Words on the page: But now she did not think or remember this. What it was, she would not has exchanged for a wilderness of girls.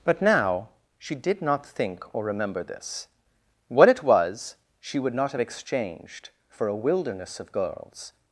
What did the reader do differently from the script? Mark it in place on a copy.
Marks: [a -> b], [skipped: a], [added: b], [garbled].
But now she did not think or remember this. What it was, she would not [has -> have] exchanged for a wilderness of girls.